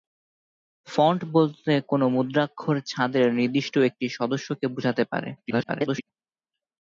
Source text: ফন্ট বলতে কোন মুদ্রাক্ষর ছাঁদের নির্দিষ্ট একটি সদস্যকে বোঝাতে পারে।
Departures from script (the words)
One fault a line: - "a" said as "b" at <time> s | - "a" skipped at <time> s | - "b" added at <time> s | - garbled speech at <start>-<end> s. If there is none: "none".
- garbled speech at 5.4-6.1 s